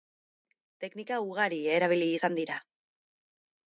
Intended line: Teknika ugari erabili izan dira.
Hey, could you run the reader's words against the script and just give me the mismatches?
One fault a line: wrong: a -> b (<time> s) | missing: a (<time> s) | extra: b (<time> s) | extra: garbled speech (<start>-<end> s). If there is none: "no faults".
no faults